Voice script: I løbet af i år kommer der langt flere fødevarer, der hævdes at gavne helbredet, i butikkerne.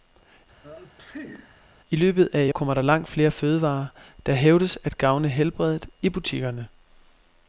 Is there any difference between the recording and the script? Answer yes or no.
yes